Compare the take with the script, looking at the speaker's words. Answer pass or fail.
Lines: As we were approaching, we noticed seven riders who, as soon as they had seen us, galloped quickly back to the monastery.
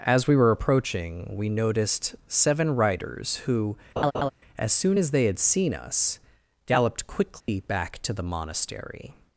pass